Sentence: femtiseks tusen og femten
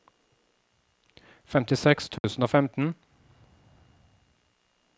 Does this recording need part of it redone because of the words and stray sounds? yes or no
yes